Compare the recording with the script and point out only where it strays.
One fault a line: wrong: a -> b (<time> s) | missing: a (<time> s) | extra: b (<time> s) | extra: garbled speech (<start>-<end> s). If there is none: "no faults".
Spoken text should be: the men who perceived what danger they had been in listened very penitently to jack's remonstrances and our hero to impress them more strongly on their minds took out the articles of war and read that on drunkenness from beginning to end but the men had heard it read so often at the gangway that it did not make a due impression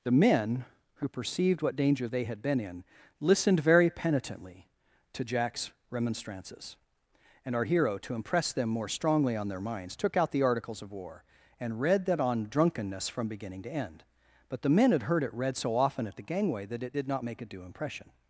no faults